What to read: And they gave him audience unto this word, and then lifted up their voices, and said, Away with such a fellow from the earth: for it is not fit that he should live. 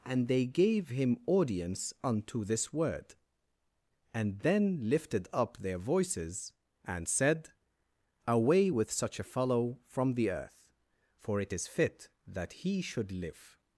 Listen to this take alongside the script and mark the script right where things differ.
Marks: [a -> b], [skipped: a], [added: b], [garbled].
And they gave him audience unto this word, and then lifted up their voices, and said, Away with such a fellow from the earth: for it is [skipped: not] fit that he should live.